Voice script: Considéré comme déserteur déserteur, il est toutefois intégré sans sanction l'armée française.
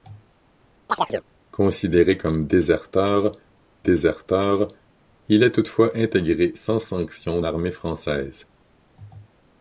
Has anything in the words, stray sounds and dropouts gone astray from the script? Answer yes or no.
yes